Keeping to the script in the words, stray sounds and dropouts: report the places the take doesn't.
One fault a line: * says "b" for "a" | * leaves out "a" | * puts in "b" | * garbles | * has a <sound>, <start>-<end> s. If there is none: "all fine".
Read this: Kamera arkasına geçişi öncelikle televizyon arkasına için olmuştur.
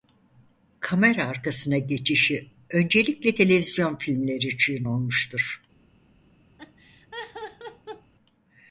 * says "filmleri" for "arkasına"
* has a laugh, 6.6-8.1 s